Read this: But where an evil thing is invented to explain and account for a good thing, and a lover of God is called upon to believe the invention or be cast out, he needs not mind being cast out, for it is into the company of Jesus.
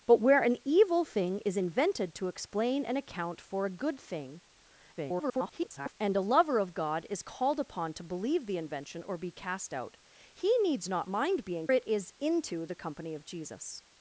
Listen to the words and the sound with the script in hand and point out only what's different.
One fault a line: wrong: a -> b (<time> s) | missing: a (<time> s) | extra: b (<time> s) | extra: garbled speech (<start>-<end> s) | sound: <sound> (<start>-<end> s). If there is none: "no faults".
extra: garbled speech (5.0-6.0 s)
missing: cast out for (11.7 s)